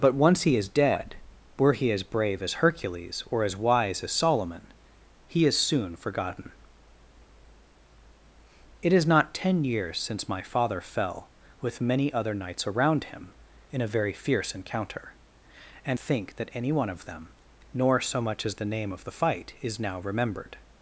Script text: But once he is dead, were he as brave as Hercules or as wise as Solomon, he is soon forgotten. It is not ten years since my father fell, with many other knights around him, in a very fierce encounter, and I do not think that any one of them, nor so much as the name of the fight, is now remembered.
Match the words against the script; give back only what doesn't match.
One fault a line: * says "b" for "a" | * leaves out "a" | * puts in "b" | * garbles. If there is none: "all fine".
* leaves out "I do not"